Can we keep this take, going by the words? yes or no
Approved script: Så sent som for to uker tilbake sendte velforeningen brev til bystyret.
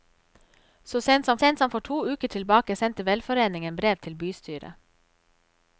no